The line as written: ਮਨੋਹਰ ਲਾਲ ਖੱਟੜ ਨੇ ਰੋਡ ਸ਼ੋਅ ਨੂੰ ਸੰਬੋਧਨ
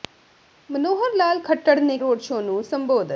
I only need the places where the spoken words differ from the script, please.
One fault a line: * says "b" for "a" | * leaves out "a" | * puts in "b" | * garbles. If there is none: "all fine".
all fine